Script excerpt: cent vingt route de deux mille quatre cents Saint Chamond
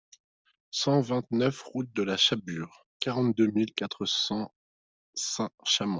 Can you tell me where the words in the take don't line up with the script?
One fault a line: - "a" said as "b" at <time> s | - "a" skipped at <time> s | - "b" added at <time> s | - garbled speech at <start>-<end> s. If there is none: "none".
- "neuf" added at 1.3 s
- "la Chabure quarante" added at 2.0 s